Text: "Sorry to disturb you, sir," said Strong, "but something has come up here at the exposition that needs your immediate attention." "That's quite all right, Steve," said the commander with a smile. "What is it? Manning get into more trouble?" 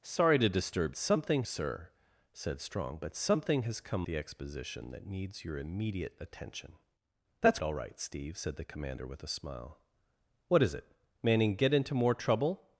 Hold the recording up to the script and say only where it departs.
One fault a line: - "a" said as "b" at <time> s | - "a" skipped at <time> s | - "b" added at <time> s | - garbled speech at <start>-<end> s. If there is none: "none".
- "you" said as "something" at 1.0 s
- "up here at" skipped at 4.1 s
- "quite" skipped at 7.6 s